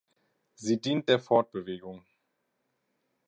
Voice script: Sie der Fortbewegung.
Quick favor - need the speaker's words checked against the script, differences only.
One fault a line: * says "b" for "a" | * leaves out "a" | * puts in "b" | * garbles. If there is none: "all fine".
* puts in "dient"